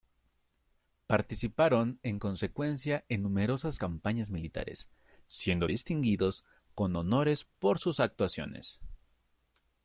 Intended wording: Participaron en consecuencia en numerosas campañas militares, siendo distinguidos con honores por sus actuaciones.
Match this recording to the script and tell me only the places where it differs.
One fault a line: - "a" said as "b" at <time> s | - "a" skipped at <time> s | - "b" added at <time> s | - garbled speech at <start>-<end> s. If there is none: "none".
none